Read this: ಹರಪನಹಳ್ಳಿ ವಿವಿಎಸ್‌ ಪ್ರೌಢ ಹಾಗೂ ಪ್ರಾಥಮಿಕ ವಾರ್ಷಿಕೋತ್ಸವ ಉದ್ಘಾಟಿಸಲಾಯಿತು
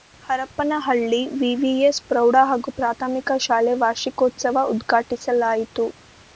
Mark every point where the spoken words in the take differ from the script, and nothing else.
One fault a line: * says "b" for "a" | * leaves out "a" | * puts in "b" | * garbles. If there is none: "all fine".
* puts in "ಶಾಲೆ"